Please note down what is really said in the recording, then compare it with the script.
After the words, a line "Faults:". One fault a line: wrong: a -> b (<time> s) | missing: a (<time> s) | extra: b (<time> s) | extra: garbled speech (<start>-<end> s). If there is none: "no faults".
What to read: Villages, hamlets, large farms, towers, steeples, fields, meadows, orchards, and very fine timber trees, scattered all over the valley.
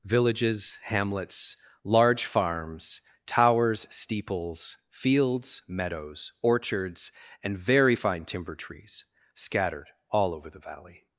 Villages, hamlets, large farms, towers, steeples, fields, meadows, orchards, and very fine timber trees, scattered all over the valley.
Faults:
no faults